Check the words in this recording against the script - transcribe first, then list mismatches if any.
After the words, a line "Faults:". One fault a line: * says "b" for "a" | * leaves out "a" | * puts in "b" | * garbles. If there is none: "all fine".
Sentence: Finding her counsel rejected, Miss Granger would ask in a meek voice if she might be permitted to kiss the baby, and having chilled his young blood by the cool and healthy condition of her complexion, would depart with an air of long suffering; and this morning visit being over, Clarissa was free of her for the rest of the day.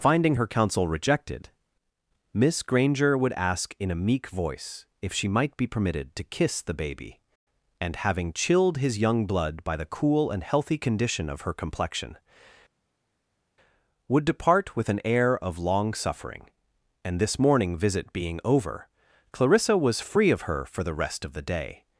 Finding her counsel rejected, Miss Granger would ask in a meek voice if she might be permitted to kiss the baby, and having chilled his young blood by the cool and healthy condition of her complexion, would depart with an air of long suffering; and this morning visit being over, Clarissa was free of her for the rest of the day.
Faults:
all fine